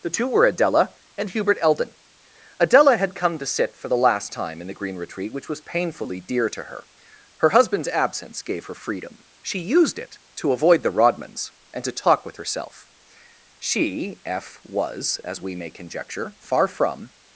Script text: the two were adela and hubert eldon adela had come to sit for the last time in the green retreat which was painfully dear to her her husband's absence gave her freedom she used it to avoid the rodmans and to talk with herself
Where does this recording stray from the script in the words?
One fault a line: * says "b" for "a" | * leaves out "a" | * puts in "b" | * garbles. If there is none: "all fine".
* puts in "she f was as we may conjecture far from"